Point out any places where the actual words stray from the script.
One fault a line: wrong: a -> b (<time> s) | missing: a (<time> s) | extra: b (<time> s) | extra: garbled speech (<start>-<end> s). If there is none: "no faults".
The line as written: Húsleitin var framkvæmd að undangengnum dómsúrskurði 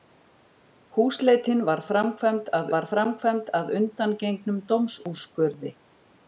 extra: var framkvæmd að (2.7 s)